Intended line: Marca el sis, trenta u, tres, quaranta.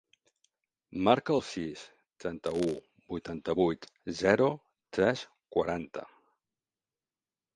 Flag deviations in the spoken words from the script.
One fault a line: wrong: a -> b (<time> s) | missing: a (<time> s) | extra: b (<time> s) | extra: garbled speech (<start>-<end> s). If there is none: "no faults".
extra: vuitanta vuit zero (3.1 s)